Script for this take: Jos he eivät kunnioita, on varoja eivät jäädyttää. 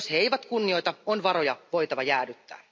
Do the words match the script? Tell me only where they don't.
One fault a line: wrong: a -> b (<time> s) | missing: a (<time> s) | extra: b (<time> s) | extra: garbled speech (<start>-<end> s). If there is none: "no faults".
wrong: eivät -> voitava (1.7 s)